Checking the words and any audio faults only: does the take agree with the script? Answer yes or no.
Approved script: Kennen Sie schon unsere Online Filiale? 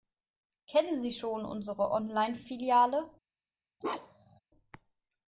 no